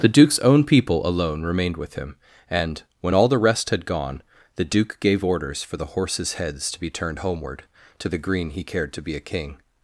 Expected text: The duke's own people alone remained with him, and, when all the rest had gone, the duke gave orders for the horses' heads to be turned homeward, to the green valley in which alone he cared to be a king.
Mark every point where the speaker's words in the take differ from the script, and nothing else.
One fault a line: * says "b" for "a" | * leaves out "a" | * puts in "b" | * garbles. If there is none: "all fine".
* leaves out "valley in which alone"